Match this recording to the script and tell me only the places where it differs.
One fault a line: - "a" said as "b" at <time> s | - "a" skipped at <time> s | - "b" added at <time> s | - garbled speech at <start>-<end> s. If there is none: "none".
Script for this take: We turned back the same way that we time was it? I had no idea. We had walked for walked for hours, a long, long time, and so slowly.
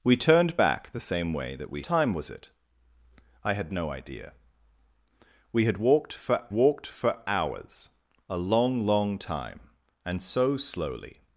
none